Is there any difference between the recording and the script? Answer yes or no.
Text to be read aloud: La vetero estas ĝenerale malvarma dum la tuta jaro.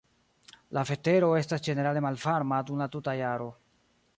no